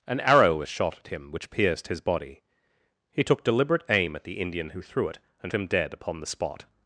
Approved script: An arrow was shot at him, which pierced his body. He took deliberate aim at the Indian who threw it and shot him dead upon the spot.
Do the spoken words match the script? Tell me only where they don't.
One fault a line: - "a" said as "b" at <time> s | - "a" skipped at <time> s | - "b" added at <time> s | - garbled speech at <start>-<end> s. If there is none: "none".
- "shot" skipped at 5.5 s